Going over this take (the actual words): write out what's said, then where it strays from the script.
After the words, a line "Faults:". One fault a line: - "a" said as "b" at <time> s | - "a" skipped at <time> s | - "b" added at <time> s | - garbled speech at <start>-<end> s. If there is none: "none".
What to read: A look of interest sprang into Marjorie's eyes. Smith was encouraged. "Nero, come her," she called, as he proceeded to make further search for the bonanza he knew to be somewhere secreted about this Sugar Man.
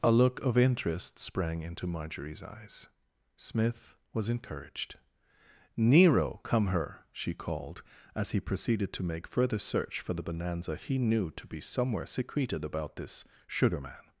A look of interest sprang into Marjorie's eyes. Smith was encouraged. "Nero, come her," she called, as he proceeded to make further search for the bonanza he knew to be somewhere secreted about this Sugar Man.
Faults:
none